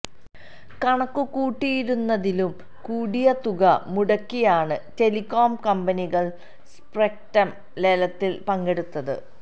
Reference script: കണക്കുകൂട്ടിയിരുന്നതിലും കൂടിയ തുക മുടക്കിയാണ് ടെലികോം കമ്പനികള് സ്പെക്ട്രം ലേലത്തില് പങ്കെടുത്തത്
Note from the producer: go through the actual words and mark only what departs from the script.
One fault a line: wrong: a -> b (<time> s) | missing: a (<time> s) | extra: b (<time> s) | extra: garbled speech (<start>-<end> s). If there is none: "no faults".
no faults